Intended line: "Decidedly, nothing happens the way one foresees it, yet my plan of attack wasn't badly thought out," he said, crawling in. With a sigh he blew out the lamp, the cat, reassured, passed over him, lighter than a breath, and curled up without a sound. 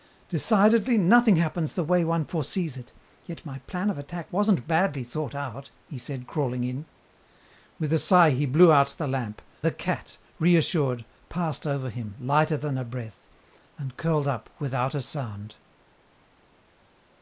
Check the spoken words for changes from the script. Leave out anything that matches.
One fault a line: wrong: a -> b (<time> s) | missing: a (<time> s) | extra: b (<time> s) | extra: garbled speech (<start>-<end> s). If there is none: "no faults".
no faults